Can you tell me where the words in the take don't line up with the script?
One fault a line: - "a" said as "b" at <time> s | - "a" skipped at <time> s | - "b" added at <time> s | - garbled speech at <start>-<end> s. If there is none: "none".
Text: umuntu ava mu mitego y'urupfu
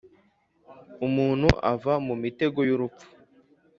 none